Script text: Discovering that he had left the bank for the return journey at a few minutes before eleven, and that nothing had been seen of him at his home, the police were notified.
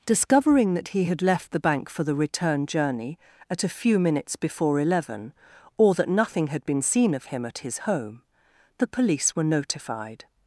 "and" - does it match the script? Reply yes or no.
no